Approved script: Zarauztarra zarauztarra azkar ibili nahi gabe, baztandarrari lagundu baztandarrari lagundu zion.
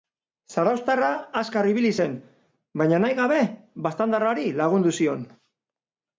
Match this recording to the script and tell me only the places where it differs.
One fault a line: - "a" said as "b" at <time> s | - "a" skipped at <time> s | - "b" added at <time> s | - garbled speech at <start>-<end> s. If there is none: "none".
- "zarauztarra" skipped at 1.1 s
- "zen baina" added at 2.0 s
- "baztandarrari lagundu" skipped at 5.0 s